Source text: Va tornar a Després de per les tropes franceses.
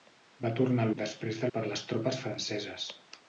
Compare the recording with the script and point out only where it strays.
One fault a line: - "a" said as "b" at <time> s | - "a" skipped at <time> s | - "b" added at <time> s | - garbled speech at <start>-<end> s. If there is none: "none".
none